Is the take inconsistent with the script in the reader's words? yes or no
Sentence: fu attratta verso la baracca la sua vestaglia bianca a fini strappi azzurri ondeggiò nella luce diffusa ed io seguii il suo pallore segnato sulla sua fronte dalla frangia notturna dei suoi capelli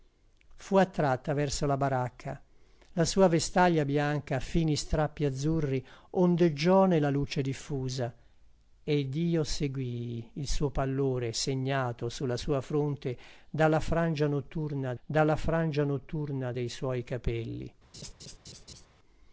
yes